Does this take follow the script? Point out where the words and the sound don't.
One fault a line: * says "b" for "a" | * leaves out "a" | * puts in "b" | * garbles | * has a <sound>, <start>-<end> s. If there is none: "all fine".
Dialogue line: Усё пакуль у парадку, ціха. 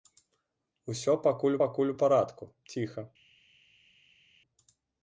* puts in "пакуль"